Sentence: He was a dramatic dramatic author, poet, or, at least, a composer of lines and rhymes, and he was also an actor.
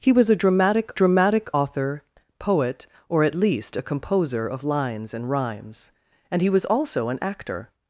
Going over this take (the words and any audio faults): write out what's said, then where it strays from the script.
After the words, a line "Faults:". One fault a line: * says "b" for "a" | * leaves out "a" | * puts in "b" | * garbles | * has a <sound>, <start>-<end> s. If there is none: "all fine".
He was a dramatic dramatic author, poet, or, at least, a composer of lines and rhymes, and he was also an actor.
Faults:
all fine